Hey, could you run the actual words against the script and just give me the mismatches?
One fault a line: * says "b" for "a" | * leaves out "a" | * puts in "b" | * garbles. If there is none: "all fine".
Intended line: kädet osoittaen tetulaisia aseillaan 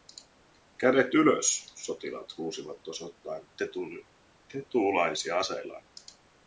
* puts in "ylös sotilaat huusivat"